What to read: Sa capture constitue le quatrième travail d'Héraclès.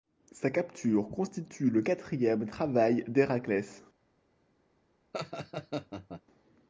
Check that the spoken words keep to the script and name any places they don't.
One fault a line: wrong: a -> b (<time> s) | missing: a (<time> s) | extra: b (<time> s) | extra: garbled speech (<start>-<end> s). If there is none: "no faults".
no faults